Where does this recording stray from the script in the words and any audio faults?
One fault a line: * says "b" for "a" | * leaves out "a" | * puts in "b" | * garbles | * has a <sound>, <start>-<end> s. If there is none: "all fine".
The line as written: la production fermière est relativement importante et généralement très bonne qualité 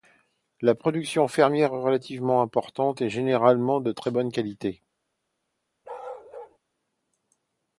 * puts in "de"
* has a bark, 5.8-6.6 s